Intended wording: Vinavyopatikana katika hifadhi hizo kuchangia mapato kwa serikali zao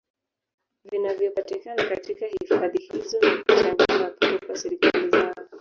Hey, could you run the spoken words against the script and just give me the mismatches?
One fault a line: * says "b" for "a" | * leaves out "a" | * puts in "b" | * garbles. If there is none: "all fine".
* puts in "na"